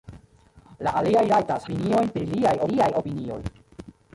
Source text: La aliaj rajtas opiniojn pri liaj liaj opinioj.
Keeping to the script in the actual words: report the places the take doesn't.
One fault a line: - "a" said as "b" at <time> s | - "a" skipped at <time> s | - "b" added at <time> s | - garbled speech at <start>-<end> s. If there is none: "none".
none